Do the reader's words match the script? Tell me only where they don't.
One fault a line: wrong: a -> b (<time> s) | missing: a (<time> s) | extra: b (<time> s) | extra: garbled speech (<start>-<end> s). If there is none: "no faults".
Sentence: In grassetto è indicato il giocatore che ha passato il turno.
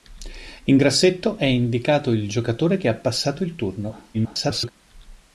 extra: garbled speech (4.1-4.7 s)